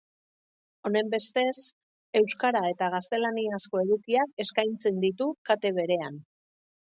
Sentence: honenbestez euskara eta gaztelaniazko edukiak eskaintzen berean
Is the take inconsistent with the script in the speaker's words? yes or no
yes